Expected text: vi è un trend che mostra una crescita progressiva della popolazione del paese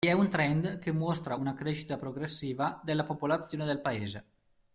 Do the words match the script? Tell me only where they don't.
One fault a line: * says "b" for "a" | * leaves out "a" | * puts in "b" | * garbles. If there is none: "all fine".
all fine